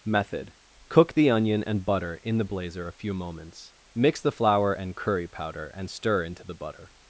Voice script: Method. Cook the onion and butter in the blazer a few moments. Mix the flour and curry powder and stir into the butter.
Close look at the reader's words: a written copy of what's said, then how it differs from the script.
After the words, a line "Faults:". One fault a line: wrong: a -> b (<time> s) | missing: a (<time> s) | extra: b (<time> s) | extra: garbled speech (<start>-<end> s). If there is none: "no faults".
Method. Cook the onion and butter in the blazer a few moments. Mix the flour and curry powder and stir into the butter.
Faults:
no faults